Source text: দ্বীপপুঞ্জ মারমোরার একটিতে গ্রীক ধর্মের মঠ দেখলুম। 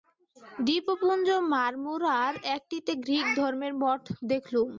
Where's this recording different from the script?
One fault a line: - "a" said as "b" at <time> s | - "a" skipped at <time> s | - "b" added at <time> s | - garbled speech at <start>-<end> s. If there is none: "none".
none